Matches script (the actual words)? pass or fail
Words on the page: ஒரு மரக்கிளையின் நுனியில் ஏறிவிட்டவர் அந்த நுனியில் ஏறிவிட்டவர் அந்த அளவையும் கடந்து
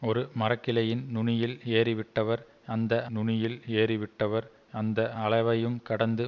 pass